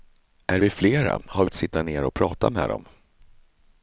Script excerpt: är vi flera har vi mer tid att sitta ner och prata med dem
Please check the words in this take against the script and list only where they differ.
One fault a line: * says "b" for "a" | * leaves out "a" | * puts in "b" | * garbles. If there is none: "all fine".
* leaves out "vi mer tid"